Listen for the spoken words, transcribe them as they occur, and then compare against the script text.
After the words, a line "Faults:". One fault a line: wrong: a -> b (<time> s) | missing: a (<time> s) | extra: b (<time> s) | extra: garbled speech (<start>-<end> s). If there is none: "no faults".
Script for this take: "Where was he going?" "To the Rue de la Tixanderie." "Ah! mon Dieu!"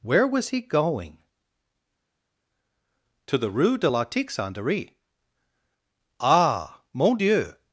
"Where was he going?" "To the Rue de la Tixanderie." "Ah! mon Dieu!"
Faults:
no faults